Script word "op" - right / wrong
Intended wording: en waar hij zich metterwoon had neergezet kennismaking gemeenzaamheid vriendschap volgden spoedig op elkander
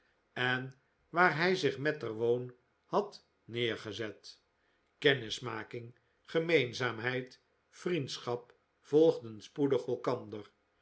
wrong